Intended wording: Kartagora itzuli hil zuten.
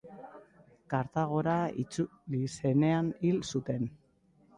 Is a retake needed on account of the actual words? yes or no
yes